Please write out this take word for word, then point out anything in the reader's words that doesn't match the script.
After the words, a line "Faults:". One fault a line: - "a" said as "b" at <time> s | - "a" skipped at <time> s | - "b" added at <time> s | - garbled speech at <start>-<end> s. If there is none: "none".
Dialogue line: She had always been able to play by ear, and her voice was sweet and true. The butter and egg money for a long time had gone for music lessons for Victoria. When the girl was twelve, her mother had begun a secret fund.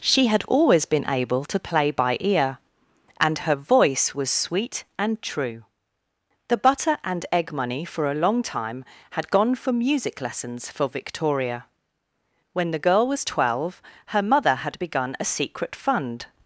She had always been able to play by ear, and her voice was sweet and true. The butter and egg money for a long time had gone for music lessons for Victoria. When the girl was twelve, her mother had begun a secret fund.
Faults:
none